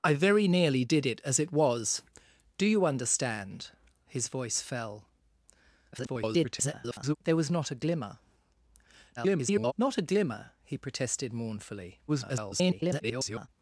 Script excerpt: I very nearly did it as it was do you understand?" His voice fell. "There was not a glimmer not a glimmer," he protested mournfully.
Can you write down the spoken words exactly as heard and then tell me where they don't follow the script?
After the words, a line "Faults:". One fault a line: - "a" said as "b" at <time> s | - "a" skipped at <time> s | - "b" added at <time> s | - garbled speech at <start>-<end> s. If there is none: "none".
I very nearly did it as it was do you understand?" His voice fell. [garbled] "There was not a glimmer [garbled] not a glimmer," he protested mournfully. [garbled]
Faults:
- garbled speech at 5.9-7.2 s
- garbled speech at 9.2-9.7 s
- garbled speech at 12.1-13.5 s